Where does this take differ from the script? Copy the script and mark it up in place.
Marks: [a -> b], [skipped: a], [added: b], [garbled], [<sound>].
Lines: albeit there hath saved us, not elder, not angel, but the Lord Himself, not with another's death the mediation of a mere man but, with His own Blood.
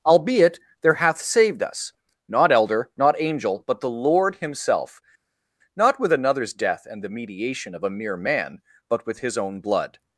albeit there hath saved us, not elder, not angel, but the Lord Himself, not with another's death [added: and] the mediation of a mere man but, with His own Blood.